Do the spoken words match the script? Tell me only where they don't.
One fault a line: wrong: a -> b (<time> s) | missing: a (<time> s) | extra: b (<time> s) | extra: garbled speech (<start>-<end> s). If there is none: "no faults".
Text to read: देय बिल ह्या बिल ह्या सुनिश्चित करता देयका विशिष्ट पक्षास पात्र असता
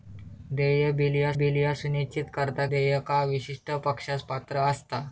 no faults